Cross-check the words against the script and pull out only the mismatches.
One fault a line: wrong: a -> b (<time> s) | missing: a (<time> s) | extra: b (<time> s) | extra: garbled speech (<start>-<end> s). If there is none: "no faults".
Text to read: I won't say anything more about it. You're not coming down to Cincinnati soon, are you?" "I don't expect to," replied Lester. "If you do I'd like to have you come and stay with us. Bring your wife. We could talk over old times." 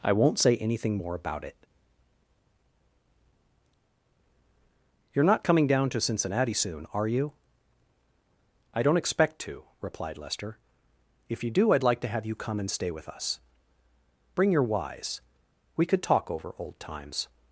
wrong: wife -> wise (14.6 s)